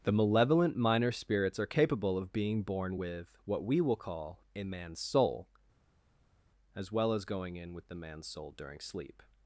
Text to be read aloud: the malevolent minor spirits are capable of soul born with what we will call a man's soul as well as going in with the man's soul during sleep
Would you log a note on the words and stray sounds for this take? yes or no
yes